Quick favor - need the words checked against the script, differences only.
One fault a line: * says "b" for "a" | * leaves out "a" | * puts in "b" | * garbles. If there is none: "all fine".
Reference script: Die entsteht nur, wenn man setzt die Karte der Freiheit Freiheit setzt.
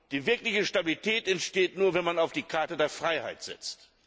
* puts in "wirkliche Stabilität"
* says "auf" for "setzt"
* leaves out "Freiheit"